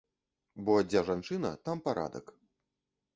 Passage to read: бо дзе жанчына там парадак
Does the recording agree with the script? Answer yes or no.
yes